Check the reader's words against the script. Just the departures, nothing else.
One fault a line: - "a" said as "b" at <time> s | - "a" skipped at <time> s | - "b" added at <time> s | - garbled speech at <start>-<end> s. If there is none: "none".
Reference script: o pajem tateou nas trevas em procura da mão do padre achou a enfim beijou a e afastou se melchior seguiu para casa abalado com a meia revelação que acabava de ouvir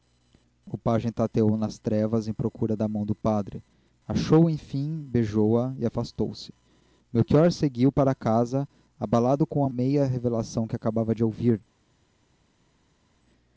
none